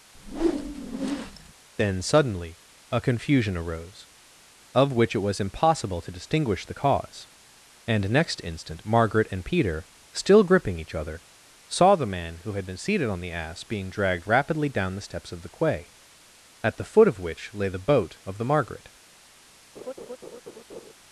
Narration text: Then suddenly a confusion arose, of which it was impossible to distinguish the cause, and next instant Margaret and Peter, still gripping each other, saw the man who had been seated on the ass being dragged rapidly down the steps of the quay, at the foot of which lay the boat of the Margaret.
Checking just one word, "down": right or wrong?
right